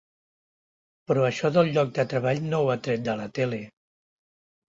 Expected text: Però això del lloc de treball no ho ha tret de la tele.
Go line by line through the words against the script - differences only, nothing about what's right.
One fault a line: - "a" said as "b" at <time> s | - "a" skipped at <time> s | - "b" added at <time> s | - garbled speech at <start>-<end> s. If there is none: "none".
none